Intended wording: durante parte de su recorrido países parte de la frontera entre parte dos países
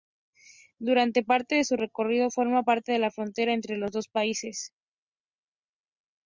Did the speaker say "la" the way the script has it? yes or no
yes